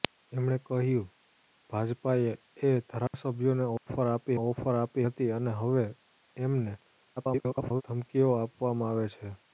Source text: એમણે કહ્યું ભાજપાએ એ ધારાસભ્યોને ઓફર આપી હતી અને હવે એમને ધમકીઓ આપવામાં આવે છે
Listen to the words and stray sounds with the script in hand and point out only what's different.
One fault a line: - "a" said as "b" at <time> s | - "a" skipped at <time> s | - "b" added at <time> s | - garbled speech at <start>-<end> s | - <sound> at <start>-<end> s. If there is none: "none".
- dropout at 3.1-3.1 s
- dropout at 3.8-3.9 s
- "ઓફર આપી" added at 4.4 s
- garbled speech at 7.2-7.8 s